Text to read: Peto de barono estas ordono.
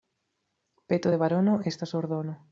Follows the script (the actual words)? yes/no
yes